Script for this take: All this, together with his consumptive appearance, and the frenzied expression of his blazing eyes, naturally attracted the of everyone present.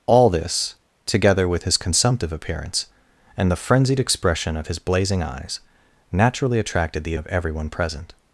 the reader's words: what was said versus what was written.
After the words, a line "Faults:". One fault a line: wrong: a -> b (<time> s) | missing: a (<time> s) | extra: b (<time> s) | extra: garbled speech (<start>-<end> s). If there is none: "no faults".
All this, together with his consumptive appearance, and the frenzied expression of his blazing eyes, naturally attracted the of everyone present.
Faults:
no faults